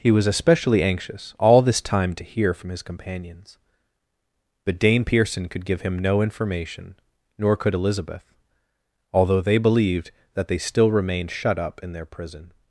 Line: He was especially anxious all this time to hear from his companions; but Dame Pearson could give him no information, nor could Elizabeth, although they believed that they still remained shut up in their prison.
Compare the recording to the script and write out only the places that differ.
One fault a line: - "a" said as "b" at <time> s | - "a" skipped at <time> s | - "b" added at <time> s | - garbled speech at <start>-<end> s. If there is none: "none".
none